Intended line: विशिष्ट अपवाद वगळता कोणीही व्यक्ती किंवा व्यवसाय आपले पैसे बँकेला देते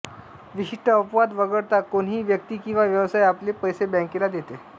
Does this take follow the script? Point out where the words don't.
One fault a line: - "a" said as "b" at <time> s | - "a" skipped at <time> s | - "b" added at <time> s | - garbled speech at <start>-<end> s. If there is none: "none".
none